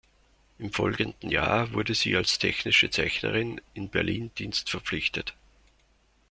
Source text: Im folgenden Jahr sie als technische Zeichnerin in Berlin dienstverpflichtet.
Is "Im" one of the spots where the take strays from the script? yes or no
no